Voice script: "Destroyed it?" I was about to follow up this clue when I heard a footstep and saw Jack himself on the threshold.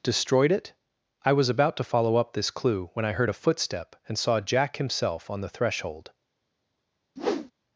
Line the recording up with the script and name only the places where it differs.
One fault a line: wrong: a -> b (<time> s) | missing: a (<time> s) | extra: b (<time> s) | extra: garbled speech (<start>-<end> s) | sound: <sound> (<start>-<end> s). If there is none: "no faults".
sound: whoosh (7.2-7.5 s)